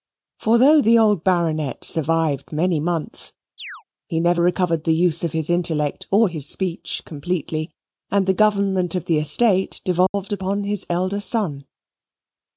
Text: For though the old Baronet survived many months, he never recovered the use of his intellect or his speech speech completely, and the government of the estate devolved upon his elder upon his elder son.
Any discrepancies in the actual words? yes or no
yes